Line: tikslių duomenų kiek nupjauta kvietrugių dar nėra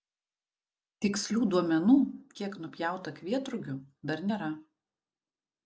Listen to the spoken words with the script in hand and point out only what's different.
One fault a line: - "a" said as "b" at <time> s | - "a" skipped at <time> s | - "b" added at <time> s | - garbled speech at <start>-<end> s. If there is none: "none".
none